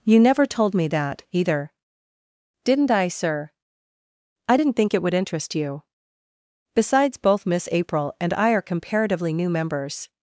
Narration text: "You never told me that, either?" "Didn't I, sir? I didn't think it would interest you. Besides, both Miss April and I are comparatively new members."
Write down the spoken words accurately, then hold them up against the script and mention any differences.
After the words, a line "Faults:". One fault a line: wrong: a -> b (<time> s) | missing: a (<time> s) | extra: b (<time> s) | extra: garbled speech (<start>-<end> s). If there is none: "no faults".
"You never told me that, either?" "Didn't I, sir? I didn't think it would interest you. Besides, both Miss April and I are comparatively new members."
Faults:
no faults